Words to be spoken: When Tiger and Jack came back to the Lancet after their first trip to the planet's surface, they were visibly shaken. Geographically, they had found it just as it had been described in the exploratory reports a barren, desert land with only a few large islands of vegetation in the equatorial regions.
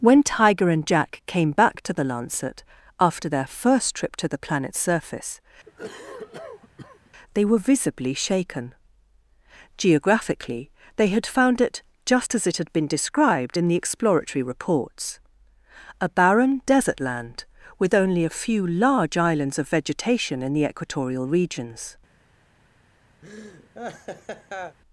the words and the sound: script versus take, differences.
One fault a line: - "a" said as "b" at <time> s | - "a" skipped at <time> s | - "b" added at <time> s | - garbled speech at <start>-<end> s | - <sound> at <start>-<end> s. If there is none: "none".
- cough at 5.7-7.1 s
- laugh at 23.2-24.8 s